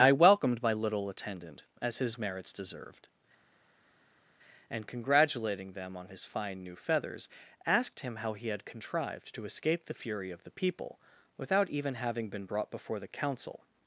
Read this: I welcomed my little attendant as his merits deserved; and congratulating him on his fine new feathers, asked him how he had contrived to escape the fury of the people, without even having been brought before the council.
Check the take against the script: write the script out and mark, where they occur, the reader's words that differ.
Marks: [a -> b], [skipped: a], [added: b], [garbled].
I welcomed my little attendant as his merits deserved; and congratulating [him -> them] on his fine new feathers, asked him how he had contrived to escape the fury of the people, without even having been brought before the council.